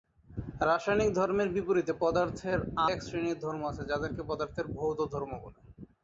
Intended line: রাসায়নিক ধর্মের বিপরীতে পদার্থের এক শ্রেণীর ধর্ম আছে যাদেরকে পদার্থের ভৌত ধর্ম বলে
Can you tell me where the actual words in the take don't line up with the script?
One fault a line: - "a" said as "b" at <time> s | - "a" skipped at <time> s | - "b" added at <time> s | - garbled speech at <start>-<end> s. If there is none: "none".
none